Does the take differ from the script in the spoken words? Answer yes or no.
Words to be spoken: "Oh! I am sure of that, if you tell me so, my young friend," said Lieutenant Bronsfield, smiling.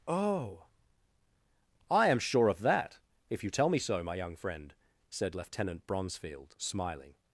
no